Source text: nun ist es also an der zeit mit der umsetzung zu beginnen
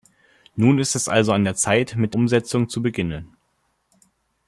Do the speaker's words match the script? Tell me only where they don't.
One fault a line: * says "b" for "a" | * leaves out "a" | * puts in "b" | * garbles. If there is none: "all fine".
* leaves out "der"